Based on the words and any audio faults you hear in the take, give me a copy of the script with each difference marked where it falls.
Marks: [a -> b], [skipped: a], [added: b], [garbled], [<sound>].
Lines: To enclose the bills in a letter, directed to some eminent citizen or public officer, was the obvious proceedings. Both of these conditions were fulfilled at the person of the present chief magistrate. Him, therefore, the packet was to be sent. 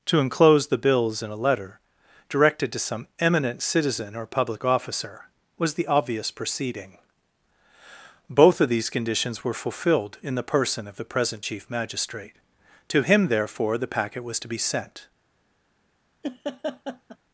To enclose the bills in a letter, directed to some eminent citizen or public officer, was the obvious [proceedings. -> proceeding] Both of these conditions were fulfilled [at -> in] the person of the present chief magistrate. [added: To] Him, therefore, the packet was to be sent. [laugh]